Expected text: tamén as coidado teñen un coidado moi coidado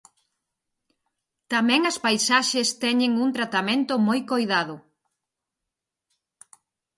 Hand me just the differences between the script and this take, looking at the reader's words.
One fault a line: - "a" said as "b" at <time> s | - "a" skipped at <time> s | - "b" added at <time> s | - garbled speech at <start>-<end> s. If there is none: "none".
- "coidado" said as "paisaxes" at 2.0 s
- "coidado" said as "tratamento" at 3.4 s